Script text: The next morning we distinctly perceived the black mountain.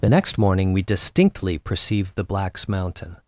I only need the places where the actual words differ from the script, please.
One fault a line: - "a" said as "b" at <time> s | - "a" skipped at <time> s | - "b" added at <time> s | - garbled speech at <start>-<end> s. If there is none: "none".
- "black" said as "blacks" at 2.2 s